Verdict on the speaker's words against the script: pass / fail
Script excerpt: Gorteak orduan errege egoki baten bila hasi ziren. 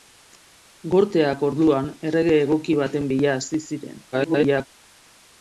fail